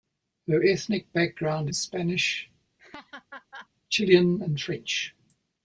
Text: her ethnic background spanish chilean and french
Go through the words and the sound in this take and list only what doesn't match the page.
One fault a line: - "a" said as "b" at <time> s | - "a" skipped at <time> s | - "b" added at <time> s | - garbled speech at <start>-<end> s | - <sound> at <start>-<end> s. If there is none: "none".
- laugh at 2.8-3.7 s